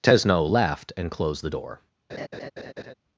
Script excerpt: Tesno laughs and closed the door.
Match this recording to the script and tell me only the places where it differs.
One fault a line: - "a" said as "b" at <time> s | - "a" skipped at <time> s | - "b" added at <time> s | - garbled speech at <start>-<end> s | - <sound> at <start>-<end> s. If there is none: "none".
- "laughs" said as "laughed" at 0.5 s
- laugh at 2.1-2.9 s